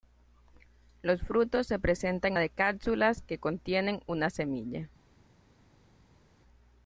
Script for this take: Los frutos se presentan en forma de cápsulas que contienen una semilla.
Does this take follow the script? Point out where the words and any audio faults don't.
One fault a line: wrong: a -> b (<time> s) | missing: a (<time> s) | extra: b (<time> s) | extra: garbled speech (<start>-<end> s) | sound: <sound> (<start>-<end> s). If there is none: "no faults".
missing: en forma (2.3 s)